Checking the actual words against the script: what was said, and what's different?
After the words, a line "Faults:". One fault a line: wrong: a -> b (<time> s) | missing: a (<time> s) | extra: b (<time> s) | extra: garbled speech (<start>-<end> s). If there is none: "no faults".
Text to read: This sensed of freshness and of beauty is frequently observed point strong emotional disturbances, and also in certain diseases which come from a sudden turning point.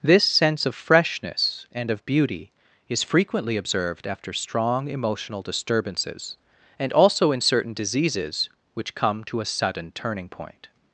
This sense of freshness and of beauty is frequently observed after strong emotional disturbances, and also in certain diseases which come to a sudden turning point.
Faults:
wrong: sensed -> sense (0.2 s)
wrong: point -> after (4.1 s)
wrong: from -> to (9.3 s)